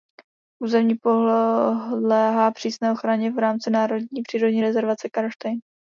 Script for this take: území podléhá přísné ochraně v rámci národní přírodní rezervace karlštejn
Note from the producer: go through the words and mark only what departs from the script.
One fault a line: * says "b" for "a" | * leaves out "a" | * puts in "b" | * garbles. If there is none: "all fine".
all fine